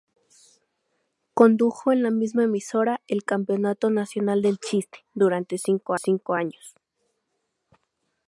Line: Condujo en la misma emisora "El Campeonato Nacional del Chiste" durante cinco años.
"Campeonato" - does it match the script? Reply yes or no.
yes